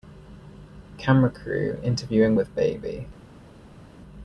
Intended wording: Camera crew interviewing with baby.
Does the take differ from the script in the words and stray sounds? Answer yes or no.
no